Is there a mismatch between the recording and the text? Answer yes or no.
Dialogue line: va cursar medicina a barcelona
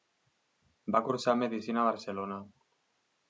no